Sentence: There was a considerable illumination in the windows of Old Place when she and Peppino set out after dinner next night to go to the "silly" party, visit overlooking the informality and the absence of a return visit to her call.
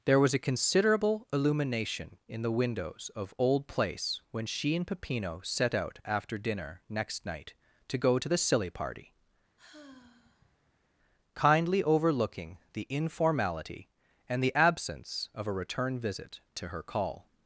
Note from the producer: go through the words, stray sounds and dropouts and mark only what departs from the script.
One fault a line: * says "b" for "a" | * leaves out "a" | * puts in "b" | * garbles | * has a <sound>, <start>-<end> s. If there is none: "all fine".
* has a sigh, 9.6-10.9 s
* says "kindly" for "visit"